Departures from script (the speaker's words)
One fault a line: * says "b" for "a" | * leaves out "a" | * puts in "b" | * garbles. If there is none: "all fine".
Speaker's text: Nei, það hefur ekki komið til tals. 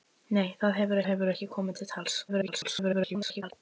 * puts in "hefur"
* garbles